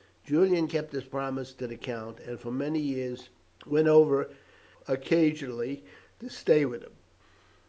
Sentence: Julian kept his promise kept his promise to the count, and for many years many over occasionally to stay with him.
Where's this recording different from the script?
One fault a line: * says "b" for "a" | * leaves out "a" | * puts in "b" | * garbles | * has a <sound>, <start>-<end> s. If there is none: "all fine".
* leaves out "kept his promise"
* says "went" for "many"